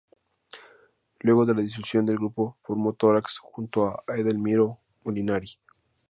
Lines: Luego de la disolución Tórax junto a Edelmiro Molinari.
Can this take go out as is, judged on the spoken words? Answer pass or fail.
fail